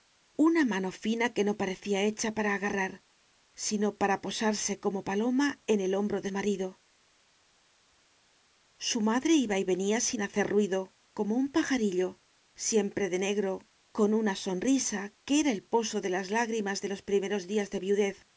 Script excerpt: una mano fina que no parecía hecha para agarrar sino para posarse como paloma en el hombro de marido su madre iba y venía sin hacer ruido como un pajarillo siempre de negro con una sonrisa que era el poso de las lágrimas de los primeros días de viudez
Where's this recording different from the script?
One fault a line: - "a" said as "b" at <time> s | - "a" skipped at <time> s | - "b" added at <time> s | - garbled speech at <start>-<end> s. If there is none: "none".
none